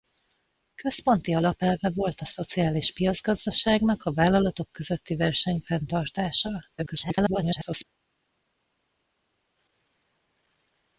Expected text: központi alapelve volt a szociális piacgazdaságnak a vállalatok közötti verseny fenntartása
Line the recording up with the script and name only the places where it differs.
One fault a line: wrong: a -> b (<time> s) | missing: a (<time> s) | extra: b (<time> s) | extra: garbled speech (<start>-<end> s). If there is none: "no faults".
extra: garbled speech (6.8-7.8 s)